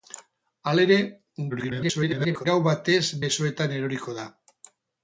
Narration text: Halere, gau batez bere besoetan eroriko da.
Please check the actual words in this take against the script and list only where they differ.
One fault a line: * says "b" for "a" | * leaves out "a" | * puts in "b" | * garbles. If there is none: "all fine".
* garbles
* leaves out "bere"